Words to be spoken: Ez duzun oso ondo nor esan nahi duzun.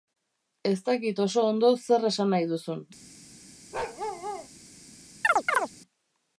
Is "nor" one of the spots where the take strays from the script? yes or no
yes